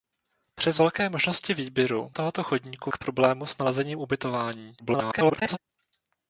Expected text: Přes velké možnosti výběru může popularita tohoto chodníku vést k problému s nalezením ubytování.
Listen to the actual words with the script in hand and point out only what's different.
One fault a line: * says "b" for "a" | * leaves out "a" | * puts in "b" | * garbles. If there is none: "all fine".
* leaves out "může popularita"
* leaves out "vést"
* garbles